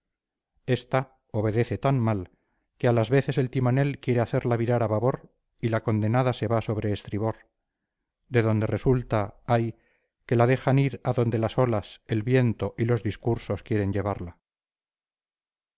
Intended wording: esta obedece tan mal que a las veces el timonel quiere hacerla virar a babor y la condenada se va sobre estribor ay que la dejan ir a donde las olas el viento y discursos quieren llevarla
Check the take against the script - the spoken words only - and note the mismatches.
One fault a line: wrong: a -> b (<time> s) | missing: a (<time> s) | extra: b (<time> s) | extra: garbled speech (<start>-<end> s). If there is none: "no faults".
extra: de donde resulta (8.3 s)
extra: los (12.8 s)